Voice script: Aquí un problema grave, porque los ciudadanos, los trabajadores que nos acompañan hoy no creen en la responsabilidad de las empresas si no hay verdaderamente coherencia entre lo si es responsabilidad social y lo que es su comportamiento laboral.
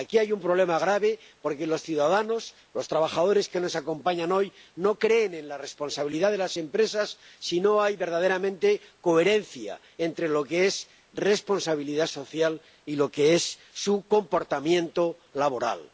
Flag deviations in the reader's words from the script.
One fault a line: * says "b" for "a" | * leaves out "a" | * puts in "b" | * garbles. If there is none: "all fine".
* puts in "hay"
* says "que" for "si"